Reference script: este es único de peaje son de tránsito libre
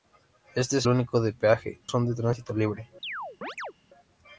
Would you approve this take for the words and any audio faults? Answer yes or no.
no